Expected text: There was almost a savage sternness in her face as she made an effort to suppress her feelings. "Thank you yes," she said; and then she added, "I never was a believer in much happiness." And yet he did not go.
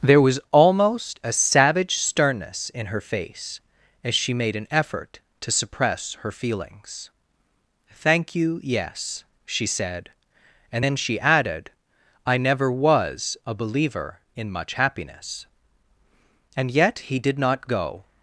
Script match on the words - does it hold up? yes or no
yes